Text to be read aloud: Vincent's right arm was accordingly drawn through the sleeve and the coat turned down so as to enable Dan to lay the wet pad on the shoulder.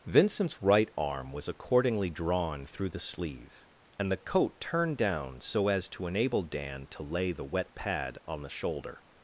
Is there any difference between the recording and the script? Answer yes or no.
no